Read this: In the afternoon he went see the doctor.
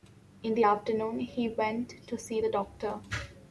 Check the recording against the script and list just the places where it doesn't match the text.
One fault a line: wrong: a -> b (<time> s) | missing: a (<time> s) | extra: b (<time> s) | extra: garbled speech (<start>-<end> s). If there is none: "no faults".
extra: to (2.1 s)